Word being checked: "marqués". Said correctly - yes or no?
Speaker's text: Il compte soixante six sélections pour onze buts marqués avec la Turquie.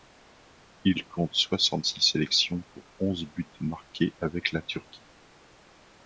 yes